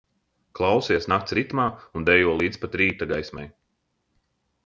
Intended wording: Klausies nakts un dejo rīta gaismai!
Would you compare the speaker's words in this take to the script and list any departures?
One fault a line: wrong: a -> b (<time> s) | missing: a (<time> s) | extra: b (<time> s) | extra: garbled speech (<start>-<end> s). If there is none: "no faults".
extra: ritmā (1.4 s)
extra: līdz pat (2.4 s)